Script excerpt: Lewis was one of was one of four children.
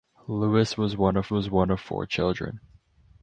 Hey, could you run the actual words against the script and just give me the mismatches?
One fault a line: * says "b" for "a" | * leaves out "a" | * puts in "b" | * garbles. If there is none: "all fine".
all fine